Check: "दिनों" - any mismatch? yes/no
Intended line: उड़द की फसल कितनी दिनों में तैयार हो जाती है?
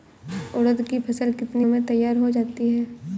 yes